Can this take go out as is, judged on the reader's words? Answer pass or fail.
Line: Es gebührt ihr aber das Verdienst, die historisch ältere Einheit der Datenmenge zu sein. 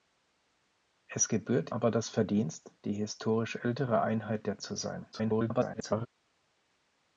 fail